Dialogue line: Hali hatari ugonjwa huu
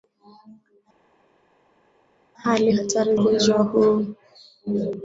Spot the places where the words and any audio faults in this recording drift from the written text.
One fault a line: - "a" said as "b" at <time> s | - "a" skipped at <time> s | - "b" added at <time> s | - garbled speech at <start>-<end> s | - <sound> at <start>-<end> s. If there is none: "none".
none